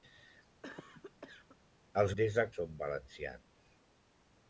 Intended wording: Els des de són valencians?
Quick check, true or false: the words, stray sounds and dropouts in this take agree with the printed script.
false